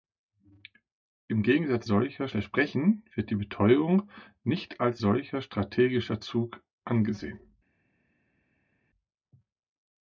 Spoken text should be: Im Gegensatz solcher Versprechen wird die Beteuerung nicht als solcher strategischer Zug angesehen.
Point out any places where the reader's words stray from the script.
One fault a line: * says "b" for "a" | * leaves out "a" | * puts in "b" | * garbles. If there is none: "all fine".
all fine